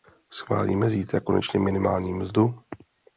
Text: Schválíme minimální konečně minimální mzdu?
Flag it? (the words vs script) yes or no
yes